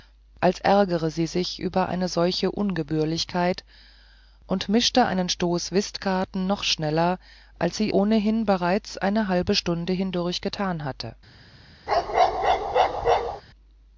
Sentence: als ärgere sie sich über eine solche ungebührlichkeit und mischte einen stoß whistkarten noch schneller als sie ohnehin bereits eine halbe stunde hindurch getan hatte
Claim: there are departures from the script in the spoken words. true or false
false